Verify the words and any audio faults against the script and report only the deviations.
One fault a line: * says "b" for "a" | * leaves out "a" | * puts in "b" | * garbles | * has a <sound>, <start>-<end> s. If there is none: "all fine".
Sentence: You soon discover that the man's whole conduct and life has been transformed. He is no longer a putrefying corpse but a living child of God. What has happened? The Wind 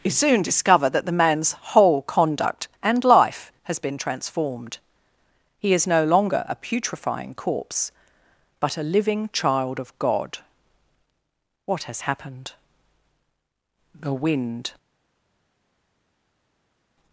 all fine